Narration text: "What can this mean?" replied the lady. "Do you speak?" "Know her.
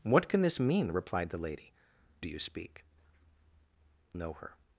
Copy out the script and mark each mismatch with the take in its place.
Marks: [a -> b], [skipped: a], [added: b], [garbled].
"What can this mean?" replied the lady. "Do you speak?" "Know her.